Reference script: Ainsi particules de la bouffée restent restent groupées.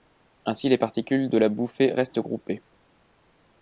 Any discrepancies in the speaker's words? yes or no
yes